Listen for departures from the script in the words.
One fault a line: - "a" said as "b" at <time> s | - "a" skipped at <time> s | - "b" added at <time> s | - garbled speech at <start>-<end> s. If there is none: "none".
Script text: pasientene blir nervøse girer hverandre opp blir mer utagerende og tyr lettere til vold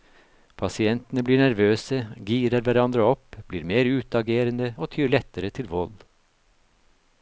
none